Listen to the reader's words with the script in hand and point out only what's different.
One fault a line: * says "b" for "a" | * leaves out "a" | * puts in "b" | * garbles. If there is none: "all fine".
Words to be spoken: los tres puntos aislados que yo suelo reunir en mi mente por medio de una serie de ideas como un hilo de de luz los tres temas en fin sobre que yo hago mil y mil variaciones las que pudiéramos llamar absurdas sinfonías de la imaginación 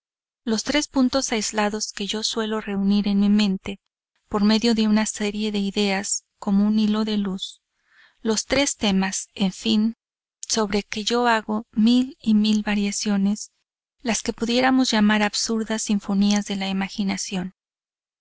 * leaves out "de"